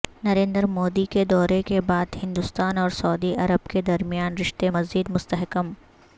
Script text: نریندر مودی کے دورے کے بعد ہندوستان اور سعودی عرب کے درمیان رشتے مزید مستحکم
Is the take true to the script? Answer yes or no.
yes